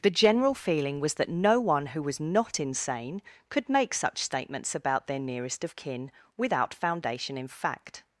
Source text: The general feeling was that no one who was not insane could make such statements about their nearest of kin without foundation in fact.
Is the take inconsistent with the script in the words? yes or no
no